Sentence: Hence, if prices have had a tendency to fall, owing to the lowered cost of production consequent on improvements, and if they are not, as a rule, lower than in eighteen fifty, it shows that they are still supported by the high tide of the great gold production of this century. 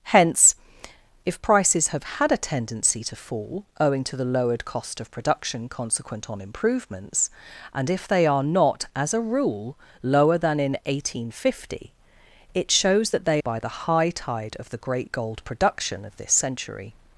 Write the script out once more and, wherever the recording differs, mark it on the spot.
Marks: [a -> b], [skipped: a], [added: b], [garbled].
Hence, if prices have had a tendency to fall, owing to the lowered cost of production consequent on improvements, and if they are not, as a rule, lower than in eighteen fifty, it shows that they [skipped: are still supported] by the high tide of the great gold production of this century.